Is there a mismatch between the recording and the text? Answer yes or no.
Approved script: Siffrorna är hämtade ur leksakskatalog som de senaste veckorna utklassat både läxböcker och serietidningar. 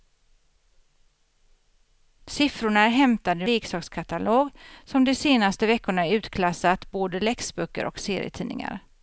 no